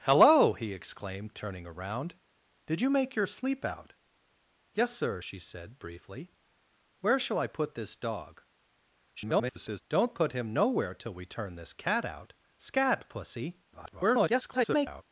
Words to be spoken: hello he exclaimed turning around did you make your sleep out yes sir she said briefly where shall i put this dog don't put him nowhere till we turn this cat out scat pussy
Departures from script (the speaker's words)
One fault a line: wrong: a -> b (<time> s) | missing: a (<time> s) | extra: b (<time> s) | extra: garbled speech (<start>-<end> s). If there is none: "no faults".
extra: garbled speech (9.2-9.8 s)
extra: garbled speech (13.7-15.0 s)